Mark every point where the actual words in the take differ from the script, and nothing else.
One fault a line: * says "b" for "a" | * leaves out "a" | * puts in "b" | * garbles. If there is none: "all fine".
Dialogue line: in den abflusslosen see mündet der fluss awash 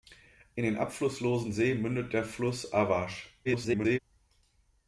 * garbles